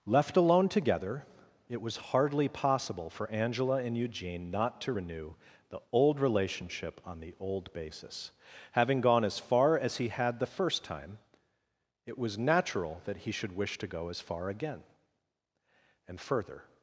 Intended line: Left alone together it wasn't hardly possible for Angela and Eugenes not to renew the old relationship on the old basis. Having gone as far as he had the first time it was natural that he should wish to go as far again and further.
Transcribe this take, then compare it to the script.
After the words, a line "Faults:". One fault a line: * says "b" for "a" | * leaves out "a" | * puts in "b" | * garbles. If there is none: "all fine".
Left alone together it was hardly possible for Angela and Eugene not to renew the old relationship on the old basis. Having gone as far as he had the first time it was natural that he should wish to go as far again and further.
Faults:
* says "was" for "wasn't"
* says "Eugene" for "Eugenes"